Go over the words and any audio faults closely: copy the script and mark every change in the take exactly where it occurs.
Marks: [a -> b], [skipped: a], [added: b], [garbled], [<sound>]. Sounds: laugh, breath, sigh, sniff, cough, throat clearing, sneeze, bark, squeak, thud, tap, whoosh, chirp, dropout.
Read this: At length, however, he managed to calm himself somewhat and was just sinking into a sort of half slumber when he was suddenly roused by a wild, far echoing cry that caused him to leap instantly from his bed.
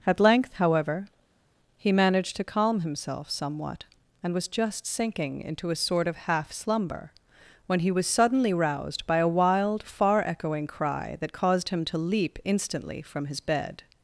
At length, however, he managed to calm himself somewhat and was just sinking into a sort of half slumber when he was suddenly roused by a wild, far echoing cry that caused him to leap instantly from his bed.